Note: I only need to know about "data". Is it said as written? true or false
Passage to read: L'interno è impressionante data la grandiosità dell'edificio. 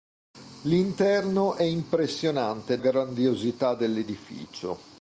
false